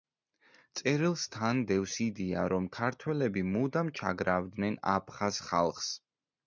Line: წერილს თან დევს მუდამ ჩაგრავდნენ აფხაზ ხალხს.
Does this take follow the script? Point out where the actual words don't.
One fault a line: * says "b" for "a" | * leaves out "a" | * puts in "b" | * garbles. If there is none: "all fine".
* puts in "იდეა რომ ქართველები"